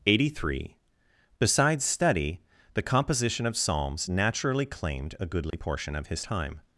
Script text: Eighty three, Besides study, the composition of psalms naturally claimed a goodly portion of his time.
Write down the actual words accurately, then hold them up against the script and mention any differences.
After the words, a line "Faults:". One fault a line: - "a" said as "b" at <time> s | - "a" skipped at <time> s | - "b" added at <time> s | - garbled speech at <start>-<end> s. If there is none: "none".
Eighty three, Besides study, the composition of psalms naturally claimed a goodly portion of his time.
Faults:
none